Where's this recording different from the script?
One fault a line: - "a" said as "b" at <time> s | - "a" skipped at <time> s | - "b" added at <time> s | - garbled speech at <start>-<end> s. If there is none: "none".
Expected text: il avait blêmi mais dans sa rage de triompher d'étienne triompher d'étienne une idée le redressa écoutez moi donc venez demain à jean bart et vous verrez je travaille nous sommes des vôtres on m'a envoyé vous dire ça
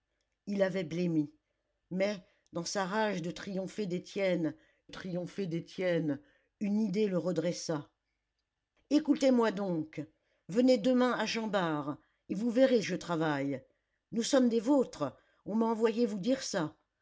none